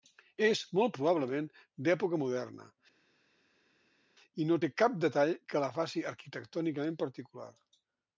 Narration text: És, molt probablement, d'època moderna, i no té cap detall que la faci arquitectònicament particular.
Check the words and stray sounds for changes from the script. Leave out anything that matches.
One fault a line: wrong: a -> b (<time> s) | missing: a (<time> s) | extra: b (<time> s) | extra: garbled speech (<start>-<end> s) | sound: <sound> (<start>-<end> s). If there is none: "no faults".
no faults